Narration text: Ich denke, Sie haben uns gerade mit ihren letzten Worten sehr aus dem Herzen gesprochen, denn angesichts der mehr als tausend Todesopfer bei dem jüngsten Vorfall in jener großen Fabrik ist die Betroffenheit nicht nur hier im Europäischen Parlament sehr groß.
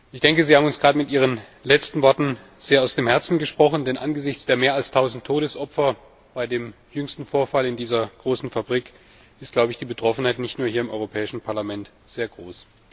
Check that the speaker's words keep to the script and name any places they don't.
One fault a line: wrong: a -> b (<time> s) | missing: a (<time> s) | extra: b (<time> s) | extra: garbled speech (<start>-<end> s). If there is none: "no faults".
wrong: jener -> dieser (7.8 s)